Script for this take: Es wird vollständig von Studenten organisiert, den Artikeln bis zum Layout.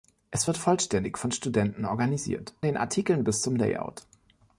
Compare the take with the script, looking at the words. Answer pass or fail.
pass